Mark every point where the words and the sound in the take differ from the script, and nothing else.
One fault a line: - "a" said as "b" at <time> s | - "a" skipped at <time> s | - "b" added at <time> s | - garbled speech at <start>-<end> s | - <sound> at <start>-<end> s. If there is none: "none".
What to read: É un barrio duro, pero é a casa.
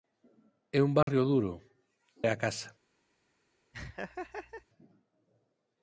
- dropout at 1.0-1.1 s
- "pero" skipped at 1.5 s
- laugh at 3.7-4.7 s